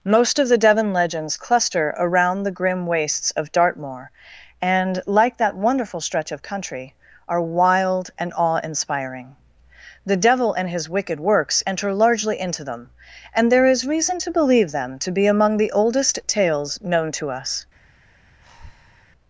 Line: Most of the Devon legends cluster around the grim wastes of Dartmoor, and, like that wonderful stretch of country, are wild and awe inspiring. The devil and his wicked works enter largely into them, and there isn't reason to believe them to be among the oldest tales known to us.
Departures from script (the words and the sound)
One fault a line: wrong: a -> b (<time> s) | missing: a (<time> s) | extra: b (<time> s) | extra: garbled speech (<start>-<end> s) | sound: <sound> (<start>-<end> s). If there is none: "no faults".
wrong: isn't -> is (13.7 s)
sound: breath (18.4-19.1 s)